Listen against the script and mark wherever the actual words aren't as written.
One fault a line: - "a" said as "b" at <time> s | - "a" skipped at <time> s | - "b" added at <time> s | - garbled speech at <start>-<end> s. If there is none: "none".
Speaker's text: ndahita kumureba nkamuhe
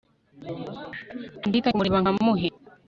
none